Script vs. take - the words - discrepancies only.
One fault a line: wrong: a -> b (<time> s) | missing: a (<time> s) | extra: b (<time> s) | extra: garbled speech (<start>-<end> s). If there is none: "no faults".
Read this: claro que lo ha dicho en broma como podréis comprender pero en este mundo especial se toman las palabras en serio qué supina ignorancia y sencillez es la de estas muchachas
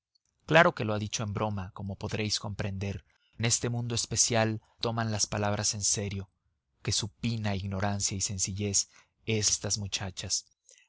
missing: pero (3.0 s)
missing: se (4.6 s)
missing: la de (9.5 s)